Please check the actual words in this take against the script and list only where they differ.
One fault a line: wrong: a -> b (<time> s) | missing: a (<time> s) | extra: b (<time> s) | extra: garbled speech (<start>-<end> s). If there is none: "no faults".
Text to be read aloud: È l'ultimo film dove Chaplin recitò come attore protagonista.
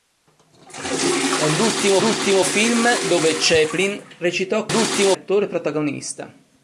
extra: l'ultimo (2.0 s)
wrong: come -> l'ultimo (4.7 s)